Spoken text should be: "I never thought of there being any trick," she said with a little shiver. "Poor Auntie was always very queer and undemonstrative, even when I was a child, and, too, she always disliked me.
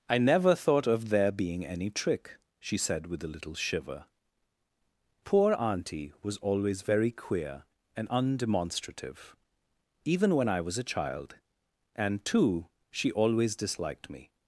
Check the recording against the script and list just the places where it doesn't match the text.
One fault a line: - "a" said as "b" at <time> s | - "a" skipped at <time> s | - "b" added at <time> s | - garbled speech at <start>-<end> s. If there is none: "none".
none